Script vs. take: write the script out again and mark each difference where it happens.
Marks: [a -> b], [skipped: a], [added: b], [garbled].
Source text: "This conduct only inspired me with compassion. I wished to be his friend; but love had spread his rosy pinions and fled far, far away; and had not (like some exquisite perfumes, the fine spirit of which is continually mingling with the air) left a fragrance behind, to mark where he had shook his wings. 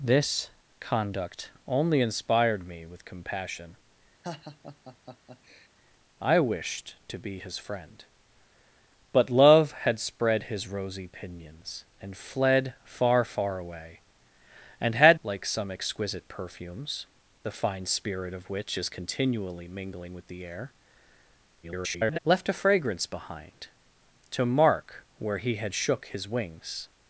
"This conduct only inspired me with compassion. I wished to be his friend; but love had spread his rosy pinions and fled far, far away; and had [skipped: not] (like some exquisite perfumes, the fine spirit of which is continually mingling with the air) [garbled] left a fragrance behind, to mark where he had shook his wings.